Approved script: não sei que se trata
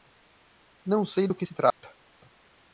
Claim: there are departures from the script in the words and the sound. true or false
true